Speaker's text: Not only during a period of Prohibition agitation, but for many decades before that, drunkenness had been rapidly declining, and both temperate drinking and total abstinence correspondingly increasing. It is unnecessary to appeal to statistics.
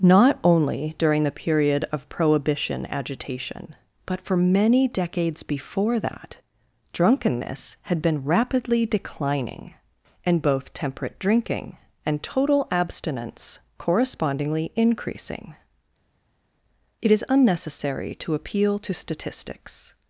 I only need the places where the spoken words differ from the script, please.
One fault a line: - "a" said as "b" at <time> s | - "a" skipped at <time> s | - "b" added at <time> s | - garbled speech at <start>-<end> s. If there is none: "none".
- "a" said as "the" at 1.2 s